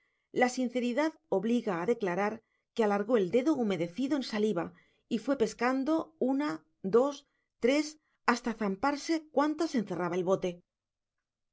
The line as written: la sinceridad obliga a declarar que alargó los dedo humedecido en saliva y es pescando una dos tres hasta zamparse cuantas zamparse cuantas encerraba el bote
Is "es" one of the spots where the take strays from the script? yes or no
yes